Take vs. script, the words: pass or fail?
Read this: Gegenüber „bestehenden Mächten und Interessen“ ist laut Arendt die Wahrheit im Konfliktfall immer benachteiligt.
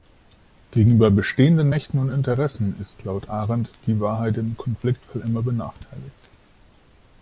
pass